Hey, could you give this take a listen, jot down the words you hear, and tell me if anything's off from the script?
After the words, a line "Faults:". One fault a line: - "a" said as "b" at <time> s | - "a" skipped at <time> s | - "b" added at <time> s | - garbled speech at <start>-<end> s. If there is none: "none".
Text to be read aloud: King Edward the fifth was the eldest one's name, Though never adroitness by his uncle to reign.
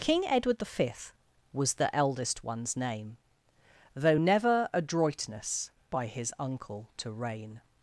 King Edward the fifth was the eldest one's name, Though never adroitness by his uncle to reign.
Faults:
none